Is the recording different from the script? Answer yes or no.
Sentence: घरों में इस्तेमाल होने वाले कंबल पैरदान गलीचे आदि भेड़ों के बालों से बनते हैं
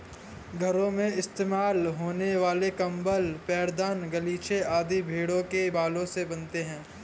no